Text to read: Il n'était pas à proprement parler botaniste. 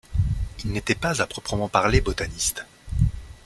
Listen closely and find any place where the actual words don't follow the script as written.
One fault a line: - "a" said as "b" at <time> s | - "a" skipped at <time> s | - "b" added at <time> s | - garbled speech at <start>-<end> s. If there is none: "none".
none